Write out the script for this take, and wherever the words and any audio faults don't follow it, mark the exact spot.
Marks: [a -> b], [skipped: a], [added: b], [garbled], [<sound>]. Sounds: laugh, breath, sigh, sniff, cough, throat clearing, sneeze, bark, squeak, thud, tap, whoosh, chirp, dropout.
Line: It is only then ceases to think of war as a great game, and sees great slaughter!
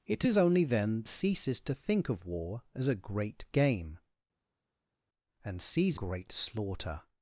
It is only then ceases to think of war as a great game, and sees great slaughter!